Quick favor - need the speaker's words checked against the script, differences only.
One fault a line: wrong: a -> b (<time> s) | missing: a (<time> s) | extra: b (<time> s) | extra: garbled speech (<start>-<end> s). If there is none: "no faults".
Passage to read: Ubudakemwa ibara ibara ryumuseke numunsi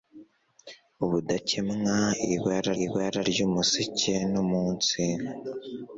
no faults